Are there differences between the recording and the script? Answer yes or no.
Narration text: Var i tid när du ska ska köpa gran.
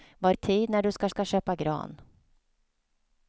no